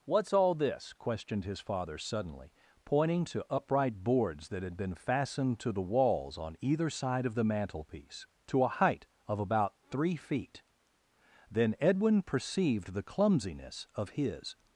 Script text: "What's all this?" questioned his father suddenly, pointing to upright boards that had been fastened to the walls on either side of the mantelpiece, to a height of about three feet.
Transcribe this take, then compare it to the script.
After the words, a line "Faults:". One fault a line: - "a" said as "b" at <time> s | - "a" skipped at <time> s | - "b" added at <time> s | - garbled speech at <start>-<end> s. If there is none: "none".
"What's all this?" questioned his father suddenly, pointing to upright boards that had been fastened to the walls on either side of the mantelpiece, to a height of about three feet. Then Edwin perceived the clumsiness of his
Faults:
- "Then Edwin perceived the clumsiness of his" added at 11.5 s